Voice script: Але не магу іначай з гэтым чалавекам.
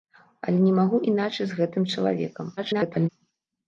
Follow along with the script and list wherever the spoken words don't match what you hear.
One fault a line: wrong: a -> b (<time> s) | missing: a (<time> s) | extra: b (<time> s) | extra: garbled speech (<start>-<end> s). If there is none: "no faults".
extra: garbled speech (2.6-3.1 s)